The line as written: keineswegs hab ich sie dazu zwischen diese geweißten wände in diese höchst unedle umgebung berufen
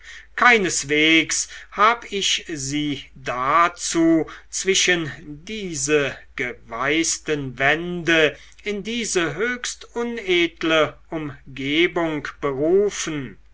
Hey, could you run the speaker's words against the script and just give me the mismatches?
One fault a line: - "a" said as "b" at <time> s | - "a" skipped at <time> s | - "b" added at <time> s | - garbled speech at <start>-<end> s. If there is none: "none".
none